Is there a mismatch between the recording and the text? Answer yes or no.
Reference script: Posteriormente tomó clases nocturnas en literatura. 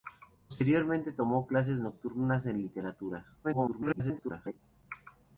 yes